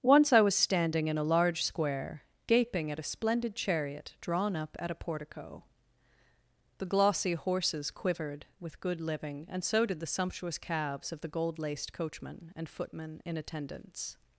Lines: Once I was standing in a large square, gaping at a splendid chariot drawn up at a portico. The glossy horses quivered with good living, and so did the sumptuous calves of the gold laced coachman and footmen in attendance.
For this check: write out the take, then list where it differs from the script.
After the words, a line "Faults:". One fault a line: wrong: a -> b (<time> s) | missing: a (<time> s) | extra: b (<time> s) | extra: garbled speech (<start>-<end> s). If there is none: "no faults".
Once I was standing in a large square, gaping at a splendid chariot drawn up at a portico. The glossy horses quivered with good living, and so did the sumptuous calves of the gold laced coachman and footmen in attendance.
Faults:
no faults